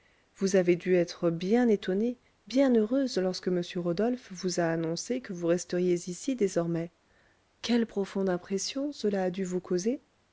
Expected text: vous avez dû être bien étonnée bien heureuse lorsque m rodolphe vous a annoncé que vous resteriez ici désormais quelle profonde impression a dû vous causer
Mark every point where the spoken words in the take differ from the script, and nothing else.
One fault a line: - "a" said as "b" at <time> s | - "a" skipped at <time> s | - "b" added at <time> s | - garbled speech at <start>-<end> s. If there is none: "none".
- "cela" added at 8.9 s